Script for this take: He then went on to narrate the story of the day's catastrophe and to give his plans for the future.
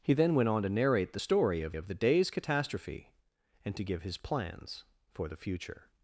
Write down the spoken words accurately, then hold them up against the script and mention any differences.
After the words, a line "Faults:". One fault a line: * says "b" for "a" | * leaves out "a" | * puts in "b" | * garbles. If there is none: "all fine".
He then went on to narrate the story of of the day's catastrophe and to give his plans for the future.
Faults:
* puts in "of"